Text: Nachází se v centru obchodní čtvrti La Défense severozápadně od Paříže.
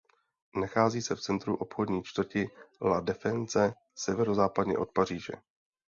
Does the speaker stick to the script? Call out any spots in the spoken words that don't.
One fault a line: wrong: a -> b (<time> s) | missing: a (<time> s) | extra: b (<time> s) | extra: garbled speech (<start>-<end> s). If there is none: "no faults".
no faults